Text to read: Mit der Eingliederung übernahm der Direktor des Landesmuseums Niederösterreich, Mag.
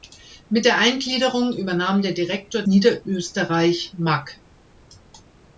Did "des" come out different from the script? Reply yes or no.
yes